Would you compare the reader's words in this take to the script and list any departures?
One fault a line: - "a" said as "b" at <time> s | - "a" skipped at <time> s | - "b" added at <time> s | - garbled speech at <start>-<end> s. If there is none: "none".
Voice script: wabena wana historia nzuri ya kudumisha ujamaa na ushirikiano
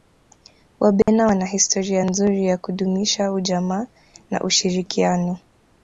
none